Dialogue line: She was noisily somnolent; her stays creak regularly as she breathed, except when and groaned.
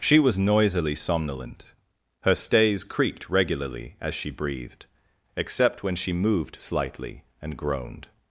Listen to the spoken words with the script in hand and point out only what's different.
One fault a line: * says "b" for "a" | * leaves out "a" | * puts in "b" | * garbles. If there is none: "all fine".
* says "creaked" for "creak"
* puts in "she moved slightly"